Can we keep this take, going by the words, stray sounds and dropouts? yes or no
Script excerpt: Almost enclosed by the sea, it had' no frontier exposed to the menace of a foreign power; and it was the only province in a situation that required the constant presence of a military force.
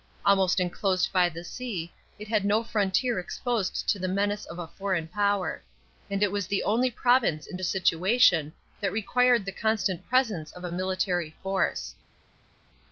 yes